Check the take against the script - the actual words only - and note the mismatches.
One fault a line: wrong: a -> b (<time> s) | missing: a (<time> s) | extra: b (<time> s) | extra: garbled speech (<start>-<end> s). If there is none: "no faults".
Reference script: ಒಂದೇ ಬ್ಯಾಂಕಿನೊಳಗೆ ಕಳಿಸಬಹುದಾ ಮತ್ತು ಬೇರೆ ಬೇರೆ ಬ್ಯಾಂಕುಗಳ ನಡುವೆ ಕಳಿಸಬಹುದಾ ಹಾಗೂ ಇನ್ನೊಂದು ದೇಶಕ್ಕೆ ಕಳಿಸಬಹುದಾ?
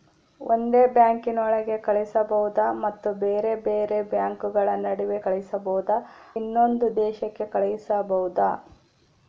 missing: ಹಾಗೂ (6.0 s)